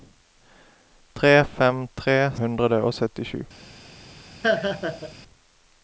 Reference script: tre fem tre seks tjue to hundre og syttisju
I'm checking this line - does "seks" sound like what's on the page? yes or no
no